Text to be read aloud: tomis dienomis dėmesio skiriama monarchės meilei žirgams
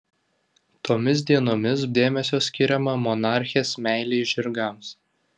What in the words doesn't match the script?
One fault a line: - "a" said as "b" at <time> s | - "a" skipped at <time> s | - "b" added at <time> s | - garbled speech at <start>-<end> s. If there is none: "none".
none